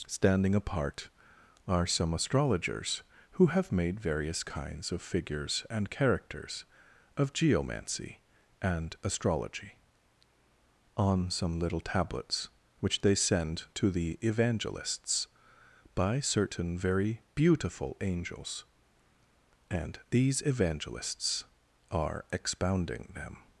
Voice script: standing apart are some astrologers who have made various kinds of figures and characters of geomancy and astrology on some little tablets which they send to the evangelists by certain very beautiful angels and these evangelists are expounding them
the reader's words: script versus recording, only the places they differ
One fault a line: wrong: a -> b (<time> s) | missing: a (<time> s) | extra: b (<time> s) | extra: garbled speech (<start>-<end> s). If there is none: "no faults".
no faults